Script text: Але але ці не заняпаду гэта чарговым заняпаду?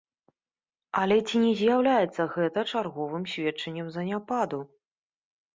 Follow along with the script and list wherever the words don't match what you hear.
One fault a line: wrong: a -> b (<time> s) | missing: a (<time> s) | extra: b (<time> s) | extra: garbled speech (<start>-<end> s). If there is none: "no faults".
missing: але (1.2 s)
wrong: заняпаду -> з'яўляецца (1.6 s)
extra: сведчаннем (3.3 s)